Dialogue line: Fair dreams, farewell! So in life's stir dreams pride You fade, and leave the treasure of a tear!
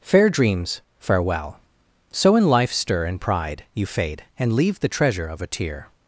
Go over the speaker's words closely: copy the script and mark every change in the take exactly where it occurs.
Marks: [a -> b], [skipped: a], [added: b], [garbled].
Fair dreams, farewell! So in life's stir [dreams -> and] pride You fade, and leave the treasure of a tear!